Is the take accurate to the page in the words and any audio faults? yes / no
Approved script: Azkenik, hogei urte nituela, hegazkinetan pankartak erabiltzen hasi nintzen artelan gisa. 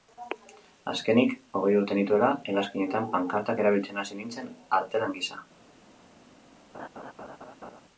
no